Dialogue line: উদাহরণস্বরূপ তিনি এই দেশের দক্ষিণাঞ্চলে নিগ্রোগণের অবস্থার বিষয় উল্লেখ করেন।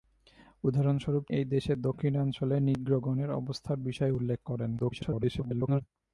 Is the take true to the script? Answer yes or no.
no